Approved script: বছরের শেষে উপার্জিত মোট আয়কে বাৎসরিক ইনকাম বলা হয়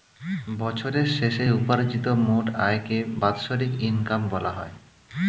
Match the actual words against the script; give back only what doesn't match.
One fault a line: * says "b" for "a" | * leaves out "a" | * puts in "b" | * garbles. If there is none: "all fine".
all fine